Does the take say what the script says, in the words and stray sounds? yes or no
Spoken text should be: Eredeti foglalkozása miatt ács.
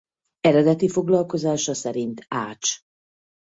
no